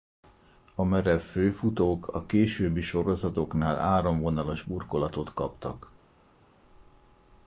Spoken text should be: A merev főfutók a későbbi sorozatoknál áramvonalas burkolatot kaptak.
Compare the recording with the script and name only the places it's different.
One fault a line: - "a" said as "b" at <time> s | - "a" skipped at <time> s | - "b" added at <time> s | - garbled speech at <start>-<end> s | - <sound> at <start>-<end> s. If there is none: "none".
none